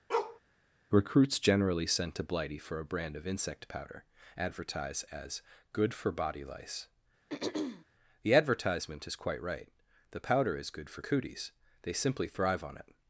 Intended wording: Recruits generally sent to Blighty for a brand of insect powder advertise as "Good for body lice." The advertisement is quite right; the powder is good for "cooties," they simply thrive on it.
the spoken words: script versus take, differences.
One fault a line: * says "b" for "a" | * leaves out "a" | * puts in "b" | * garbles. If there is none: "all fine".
all fine